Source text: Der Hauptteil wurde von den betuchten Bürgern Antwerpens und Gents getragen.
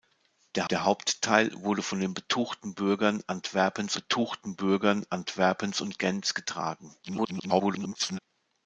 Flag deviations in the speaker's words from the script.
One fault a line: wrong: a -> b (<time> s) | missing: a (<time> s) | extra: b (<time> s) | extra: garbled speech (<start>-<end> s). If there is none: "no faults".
extra: der (0.7 s)
extra: betuchten Bürgern Antwerpens (3.9 s)
extra: garbled speech (7.0-8.2 s)